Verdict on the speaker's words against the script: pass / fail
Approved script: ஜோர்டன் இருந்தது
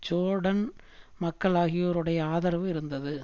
fail